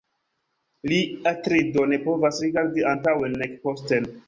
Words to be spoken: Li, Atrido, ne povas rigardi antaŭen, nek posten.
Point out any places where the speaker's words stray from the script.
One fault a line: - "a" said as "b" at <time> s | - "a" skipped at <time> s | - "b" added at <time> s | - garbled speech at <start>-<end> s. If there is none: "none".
none